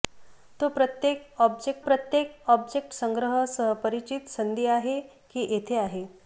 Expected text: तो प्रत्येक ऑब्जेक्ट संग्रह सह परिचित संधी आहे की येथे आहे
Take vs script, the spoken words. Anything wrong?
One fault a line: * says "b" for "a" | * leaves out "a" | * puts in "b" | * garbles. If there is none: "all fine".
* puts in "प्रत्येक ऑब्जेक्ट"